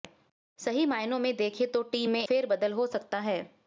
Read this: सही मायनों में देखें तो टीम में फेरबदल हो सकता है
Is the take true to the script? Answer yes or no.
yes